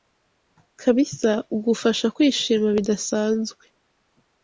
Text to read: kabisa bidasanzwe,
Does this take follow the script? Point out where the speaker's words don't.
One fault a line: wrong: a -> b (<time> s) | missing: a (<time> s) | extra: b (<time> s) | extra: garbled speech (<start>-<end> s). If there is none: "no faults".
extra: ugufasha kwishima (1.6 s)